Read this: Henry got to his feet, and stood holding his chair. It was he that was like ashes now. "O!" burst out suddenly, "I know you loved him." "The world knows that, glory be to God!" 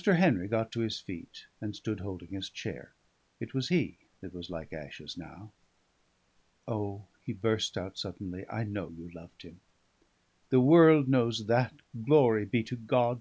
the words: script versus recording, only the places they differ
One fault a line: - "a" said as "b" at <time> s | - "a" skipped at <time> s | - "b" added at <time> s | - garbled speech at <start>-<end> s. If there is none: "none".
- "he" added at 7.2 s